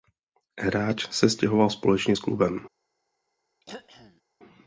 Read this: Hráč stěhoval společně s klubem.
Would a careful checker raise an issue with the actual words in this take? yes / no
yes